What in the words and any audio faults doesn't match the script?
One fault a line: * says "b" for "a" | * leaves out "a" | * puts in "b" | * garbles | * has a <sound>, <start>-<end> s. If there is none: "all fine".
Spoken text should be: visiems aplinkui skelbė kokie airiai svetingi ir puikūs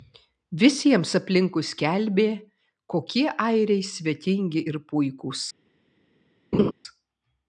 * has a laugh, 6.5-6.7 s